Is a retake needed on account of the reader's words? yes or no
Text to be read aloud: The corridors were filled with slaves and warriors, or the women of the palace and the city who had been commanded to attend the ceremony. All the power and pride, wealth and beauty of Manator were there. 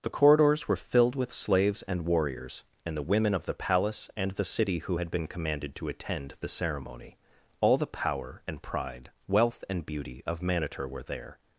yes